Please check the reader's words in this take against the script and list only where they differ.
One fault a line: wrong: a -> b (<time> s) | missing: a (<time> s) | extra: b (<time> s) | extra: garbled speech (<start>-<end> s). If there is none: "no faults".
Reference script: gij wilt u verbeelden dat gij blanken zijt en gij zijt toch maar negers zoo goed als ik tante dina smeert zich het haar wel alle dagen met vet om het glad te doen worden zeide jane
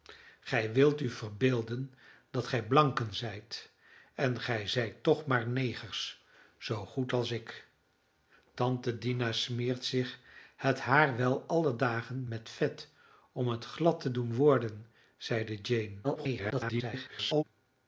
extra: garbled speech (16.0-17.4 s)